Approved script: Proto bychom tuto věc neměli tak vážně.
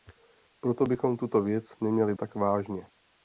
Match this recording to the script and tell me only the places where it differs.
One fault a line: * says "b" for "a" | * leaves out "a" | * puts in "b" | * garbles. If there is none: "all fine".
all fine